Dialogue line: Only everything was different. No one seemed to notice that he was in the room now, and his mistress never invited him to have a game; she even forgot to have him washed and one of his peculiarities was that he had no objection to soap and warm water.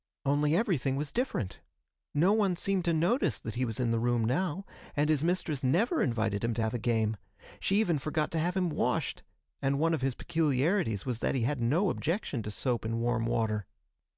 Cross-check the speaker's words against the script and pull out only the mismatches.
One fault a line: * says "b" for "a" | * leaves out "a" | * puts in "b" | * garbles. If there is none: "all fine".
all fine